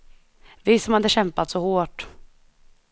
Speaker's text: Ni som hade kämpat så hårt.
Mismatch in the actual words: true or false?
true